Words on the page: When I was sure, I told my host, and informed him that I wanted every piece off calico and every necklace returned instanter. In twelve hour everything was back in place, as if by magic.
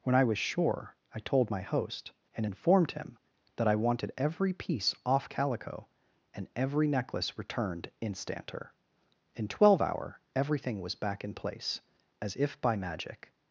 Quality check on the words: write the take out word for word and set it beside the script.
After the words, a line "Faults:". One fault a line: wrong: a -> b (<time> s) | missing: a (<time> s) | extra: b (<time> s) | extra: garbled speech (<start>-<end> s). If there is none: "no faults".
When I was sure, I told my host, and informed him that I wanted every piece off calico and every necklace returned instanter. In twelve hour everything was back in place, as if by magic.
Faults:
no faults